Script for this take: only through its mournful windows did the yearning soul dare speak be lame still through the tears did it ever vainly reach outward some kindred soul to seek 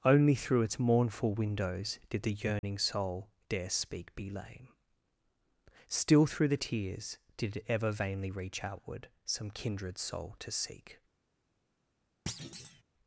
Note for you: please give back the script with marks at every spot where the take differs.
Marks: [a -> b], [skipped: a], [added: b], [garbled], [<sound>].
only through its mournful windows did the yearning [dropout] soul dare speak be lame still through the tears did it ever vainly reach outward some kindred soul to seek [thud]